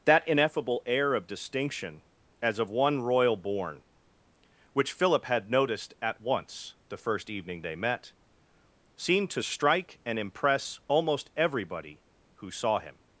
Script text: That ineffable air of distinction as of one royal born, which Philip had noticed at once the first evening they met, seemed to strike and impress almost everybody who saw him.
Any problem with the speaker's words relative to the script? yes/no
no